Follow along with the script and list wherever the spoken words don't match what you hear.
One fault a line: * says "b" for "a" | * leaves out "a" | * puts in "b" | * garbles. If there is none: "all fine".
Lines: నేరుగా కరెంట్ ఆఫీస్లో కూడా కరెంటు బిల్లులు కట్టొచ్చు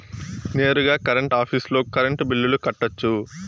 * leaves out "కూడా"